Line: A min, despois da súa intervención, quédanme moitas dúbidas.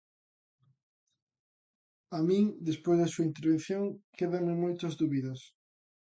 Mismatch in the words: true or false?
false